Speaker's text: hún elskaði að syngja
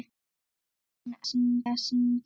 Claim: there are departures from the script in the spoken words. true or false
true